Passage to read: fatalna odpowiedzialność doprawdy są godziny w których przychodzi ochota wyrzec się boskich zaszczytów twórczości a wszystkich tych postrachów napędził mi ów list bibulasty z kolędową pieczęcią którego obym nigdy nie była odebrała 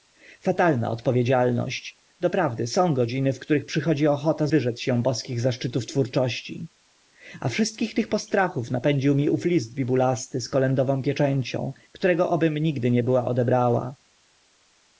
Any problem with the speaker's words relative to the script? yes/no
no